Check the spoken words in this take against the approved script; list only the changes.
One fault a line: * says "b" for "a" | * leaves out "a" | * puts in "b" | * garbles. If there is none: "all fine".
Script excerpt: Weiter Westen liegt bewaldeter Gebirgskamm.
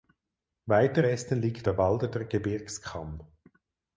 all fine